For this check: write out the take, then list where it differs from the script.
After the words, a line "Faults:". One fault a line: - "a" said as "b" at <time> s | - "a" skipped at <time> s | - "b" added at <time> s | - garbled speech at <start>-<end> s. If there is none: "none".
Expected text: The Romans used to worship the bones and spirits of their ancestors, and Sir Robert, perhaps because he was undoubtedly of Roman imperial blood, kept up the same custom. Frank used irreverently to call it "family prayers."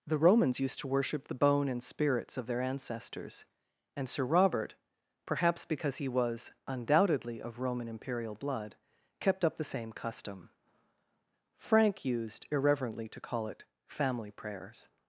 The Romans used to worship the bone and spirits of their ancestors, and Sir Robert, perhaps because he was undoubtedly of Roman imperial blood, kept up the same custom. Frank used irreverently to call it "family prayers."
Faults:
- "bones" said as "bone" at 1.4 s